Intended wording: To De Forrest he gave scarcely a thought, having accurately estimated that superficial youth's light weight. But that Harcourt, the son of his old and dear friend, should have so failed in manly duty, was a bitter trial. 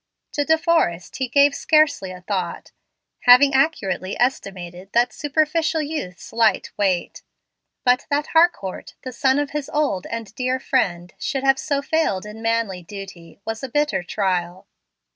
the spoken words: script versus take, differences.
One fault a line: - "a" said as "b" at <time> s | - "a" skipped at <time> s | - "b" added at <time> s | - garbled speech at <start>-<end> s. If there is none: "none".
none